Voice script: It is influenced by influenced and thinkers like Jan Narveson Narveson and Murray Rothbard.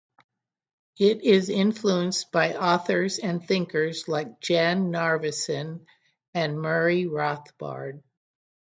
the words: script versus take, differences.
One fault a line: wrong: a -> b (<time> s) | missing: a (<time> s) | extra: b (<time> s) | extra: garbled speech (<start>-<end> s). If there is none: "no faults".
wrong: influenced -> authors (2.5 s)
missing: Narveson (5.9 s)